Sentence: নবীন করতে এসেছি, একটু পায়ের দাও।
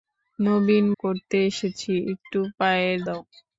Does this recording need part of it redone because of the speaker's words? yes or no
no